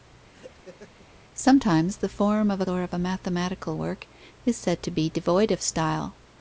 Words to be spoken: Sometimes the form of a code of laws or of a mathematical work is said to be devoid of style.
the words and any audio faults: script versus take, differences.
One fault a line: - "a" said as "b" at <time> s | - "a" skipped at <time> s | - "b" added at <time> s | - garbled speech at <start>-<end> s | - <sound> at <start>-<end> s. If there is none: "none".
- laugh at 0.3-1.1 s
- "code of laws" skipped at 2.6 s